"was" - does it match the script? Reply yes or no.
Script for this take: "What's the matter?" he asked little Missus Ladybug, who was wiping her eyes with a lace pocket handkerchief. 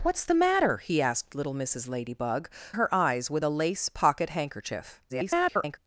no